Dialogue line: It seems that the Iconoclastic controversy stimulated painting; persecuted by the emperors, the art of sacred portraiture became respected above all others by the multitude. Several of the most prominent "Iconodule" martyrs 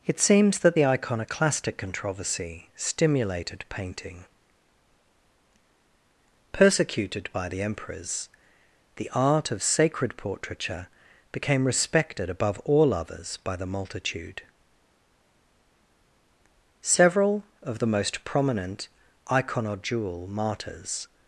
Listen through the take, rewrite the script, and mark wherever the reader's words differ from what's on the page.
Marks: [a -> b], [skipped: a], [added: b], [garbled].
It seems that the Iconoclastic controversy stimulated painting; persecuted by the emperors, the art of sacred portraiture became respected above all others by the multitude. Several of the most prominent "Iconodule" martyrs